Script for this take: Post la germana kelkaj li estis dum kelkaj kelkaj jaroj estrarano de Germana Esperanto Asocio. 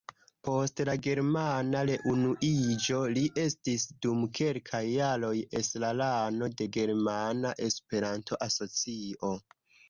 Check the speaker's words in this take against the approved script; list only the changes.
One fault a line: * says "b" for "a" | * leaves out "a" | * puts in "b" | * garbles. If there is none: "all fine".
* says "reunuiĝo" for "kelkaj"
* leaves out "kelkaj"